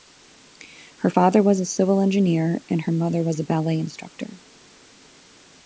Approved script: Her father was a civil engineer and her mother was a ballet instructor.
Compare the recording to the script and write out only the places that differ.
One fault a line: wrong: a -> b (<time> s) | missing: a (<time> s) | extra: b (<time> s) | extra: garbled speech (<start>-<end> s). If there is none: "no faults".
no faults